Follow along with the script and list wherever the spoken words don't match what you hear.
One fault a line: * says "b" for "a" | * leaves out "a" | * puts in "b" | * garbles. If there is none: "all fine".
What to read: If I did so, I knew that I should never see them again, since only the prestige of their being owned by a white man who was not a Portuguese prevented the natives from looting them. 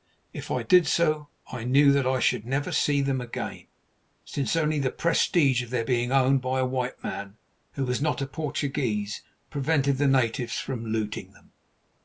all fine